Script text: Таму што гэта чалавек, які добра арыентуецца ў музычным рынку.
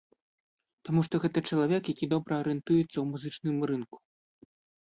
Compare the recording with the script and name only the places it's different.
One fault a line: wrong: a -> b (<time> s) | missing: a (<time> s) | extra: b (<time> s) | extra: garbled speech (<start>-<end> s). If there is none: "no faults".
no faults